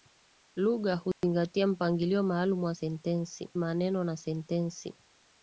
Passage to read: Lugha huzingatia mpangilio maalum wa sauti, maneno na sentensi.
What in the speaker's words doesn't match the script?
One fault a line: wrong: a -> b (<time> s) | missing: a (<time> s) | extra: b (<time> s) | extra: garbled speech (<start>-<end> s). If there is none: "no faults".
wrong: sauti -> sentensi (2.7 s)